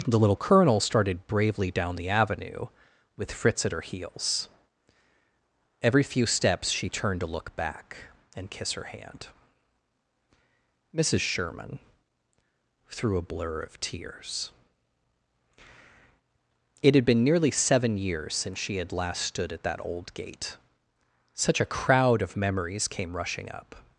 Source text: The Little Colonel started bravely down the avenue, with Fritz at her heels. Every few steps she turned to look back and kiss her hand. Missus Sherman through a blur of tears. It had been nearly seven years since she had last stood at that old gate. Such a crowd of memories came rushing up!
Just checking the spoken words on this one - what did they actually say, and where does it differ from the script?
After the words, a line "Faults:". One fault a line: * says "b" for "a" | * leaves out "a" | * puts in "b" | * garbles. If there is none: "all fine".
The Little Colonel started bravely down the avenue, with Fritz at her heels. Every few steps she turned to look back and kiss her hand. Missus Sherman through a blur of tears. It had been nearly seven years since she had last stood at that old gate. Such a crowd of memories came rushing up!
Faults:
all fine